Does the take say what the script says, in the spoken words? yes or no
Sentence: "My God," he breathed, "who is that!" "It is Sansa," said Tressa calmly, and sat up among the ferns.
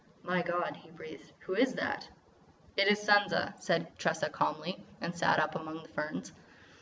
yes